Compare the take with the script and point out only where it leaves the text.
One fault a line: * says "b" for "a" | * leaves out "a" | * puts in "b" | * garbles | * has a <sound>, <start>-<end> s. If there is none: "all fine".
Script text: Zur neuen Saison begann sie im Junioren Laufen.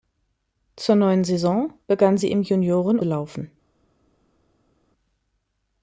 all fine